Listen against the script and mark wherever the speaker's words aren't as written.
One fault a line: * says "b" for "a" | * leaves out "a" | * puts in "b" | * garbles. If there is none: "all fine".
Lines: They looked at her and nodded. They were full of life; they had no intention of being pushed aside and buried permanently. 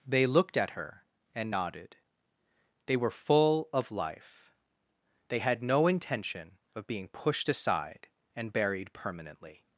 all fine